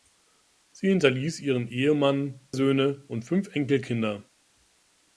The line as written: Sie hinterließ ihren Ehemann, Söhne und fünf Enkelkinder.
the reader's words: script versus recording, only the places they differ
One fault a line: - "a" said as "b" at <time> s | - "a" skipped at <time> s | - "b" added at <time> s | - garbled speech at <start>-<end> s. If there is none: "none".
none